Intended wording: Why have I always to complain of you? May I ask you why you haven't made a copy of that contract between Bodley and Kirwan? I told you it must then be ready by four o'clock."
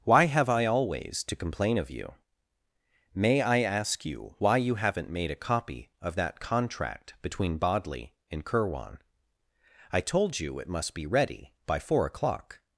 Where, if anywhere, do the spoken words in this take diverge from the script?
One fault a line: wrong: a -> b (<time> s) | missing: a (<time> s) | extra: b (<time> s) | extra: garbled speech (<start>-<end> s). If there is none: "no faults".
missing: then (10.9 s)